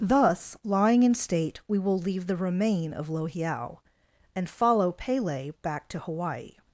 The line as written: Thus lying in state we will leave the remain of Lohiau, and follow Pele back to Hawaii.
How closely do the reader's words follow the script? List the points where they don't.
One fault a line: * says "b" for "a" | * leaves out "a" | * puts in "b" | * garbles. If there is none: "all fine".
all fine